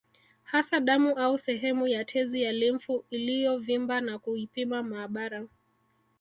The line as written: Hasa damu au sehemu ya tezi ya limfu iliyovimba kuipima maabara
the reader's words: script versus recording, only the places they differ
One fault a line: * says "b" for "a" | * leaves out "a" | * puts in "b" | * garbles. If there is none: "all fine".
* puts in "na"